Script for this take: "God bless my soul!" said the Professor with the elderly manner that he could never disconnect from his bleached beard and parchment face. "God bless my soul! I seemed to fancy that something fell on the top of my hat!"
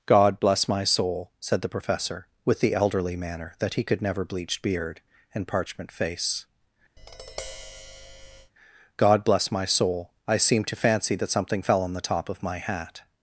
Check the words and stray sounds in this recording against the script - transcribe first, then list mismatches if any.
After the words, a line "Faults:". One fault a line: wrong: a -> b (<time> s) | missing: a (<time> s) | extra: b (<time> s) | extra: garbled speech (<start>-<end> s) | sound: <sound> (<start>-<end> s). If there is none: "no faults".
"God bless my soul!" said the Professor with the elderly manner that he could never bleached beard and parchment face. "God bless my soul! I seemed to fancy that something fell on the top of my hat!"
Faults:
missing: disconnect from his (4.2 s)
sound: tap (7.0-8.5 s)